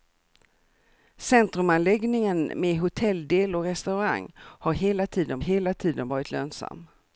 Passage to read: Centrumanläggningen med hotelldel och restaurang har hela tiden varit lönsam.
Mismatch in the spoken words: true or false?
true